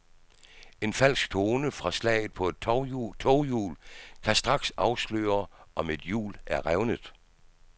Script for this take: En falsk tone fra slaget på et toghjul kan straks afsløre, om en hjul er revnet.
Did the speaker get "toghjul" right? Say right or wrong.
right